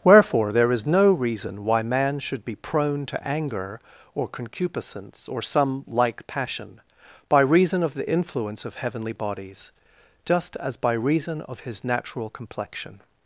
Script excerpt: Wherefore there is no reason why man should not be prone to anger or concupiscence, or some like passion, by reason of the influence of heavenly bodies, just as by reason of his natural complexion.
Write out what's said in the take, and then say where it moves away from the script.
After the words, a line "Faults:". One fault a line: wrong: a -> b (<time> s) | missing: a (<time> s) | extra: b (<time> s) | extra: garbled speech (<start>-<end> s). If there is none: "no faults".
Wherefore there is no reason why man should be prone to anger or concupiscence, or some like passion, by reason of the influence of heavenly bodies, just as by reason of his natural complexion.
Faults:
missing: not (2.4 s)